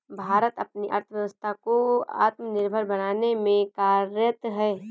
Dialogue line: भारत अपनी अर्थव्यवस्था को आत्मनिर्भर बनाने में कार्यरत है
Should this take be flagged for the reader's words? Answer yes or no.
no